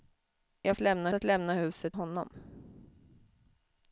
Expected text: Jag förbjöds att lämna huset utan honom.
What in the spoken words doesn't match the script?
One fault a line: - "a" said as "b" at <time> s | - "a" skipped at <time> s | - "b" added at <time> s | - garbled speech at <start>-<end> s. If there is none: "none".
- "förbjöds" said as "lämna" at 0.8 s
- "utan" skipped at 2.0 s